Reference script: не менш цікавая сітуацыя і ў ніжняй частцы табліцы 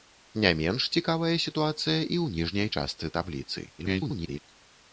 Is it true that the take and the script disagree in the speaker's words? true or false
true